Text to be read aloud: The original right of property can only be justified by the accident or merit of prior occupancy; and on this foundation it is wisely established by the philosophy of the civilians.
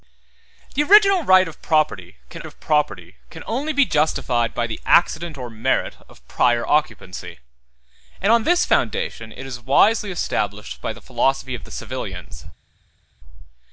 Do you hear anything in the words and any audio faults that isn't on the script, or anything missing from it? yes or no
yes